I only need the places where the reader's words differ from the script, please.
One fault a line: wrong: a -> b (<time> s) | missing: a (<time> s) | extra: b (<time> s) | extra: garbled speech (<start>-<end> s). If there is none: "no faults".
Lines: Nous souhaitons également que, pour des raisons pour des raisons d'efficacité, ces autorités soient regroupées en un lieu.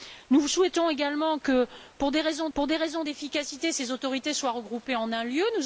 no faults